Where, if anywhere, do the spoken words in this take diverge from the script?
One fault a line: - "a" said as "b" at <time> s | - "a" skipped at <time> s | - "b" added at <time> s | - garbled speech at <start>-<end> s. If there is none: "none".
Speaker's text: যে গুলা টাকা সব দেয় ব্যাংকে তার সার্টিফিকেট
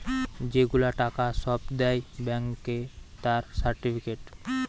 none